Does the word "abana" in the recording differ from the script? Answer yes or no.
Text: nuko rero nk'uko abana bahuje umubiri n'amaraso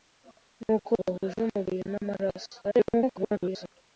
yes